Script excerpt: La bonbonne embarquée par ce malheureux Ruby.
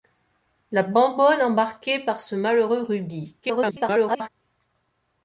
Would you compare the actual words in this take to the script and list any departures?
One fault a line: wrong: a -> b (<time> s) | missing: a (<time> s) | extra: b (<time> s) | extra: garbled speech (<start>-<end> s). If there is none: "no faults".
extra: garbled speech (3.4-4.3 s)